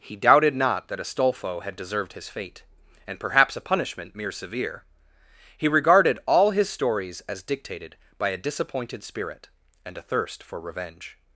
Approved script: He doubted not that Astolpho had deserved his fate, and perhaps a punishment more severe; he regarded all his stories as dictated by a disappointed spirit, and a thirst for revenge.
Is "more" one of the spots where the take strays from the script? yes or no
yes